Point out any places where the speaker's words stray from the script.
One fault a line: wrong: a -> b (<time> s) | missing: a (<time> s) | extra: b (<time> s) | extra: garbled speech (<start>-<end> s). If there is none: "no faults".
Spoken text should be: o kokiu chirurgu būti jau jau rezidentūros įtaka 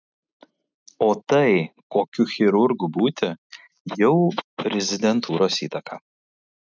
extra: tai (1.3 s)
missing: jau (4.1 s)